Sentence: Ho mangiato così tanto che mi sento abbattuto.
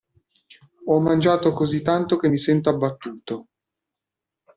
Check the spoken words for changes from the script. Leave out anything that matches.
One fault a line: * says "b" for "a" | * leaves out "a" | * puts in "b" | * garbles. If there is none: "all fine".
all fine